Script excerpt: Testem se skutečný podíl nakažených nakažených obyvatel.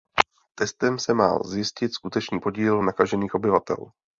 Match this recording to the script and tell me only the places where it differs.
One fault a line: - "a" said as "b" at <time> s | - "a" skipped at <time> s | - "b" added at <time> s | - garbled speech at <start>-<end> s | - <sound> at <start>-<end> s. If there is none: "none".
- "má zjistit" added at 1.1 s
- "nakažených" skipped at 3.3 s